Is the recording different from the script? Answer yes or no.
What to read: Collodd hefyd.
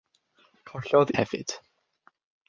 no